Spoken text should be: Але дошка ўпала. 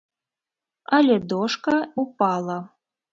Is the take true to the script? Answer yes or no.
yes